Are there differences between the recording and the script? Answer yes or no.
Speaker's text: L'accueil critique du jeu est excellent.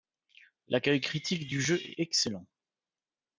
no